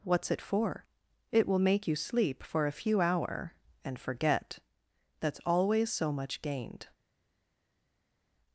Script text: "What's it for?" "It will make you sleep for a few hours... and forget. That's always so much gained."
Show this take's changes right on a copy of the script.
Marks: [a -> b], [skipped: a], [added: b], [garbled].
"What's it for?" "It will make you sleep for a few [hours... -> hour] and forget. That's always so much gained."